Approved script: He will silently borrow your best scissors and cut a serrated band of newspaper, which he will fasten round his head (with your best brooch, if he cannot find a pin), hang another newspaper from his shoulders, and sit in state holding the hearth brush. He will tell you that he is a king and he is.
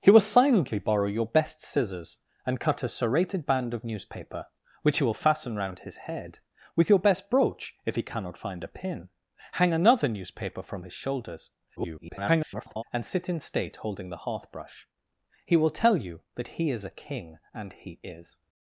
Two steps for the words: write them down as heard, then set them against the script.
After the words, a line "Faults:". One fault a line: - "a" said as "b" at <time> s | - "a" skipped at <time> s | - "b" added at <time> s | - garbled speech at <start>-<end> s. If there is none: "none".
He will silently borrow your best scissors and cut a serrated band of newspaper, which he will fasten round his head (with your best brooch, if he cannot find a pin), hang another newspaper from his shoulders, [garbled] and sit in state holding the hearth brush. He will tell you that he is a king and he is.
Faults:
- garbled speech at 11.8-12.8 s